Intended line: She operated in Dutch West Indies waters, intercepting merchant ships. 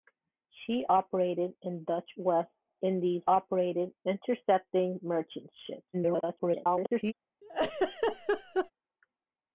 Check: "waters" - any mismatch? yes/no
yes